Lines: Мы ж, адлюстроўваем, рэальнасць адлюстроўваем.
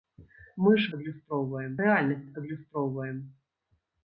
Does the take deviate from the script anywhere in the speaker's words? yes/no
no